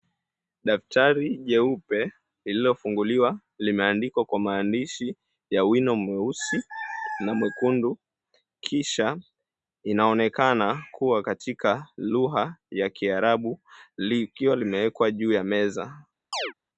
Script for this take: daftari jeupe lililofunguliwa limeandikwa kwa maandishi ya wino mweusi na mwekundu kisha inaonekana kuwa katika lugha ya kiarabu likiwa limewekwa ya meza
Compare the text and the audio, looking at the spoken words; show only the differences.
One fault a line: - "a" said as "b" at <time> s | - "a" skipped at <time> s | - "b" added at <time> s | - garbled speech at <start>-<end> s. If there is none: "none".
- "juu" added at 15.1 s